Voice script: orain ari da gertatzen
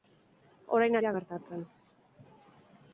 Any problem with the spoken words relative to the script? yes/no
yes